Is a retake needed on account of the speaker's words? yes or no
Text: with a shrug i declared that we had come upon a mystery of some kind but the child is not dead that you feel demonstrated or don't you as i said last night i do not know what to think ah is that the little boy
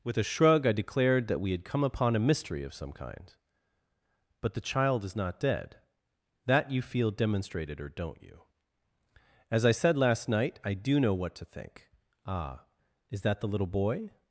yes